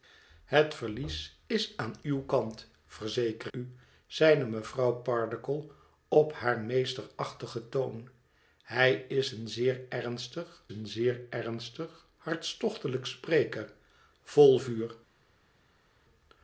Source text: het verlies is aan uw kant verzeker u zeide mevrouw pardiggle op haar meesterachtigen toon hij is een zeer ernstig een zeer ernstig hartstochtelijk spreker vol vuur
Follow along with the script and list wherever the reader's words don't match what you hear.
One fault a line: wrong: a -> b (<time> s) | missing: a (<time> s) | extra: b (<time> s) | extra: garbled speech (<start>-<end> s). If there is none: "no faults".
no faults